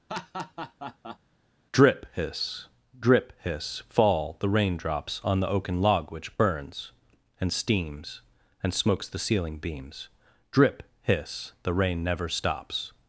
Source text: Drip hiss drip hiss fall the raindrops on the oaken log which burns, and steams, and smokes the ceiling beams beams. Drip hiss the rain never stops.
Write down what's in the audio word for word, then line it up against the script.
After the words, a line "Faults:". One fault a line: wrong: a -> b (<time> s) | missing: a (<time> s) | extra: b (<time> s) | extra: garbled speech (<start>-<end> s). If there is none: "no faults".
Drip hiss drip hiss fall the raindrops on the oaken log which burns, and steams, and smokes the ceiling beams. Drip hiss the rain never stops.
Faults:
missing: beams (10.1 s)